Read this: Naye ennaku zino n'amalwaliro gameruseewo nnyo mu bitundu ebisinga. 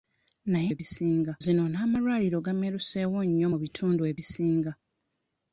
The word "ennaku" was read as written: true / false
false